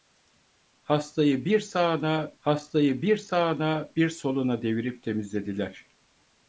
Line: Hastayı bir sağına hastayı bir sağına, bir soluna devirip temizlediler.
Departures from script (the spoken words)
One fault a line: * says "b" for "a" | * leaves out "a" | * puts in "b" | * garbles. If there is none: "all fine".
all fine